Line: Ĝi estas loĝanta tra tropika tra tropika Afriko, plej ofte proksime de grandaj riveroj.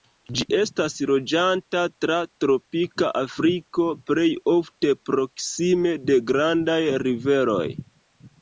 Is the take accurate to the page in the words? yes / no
no